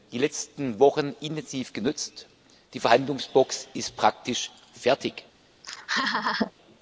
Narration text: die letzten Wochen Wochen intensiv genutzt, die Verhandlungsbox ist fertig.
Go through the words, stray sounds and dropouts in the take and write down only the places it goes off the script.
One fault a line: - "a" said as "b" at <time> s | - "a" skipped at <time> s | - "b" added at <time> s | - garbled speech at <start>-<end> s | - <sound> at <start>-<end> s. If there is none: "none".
- "Wochen" skipped at 1.1 s
- "praktisch" added at 4.0 s
- laugh at 5.6-6.5 s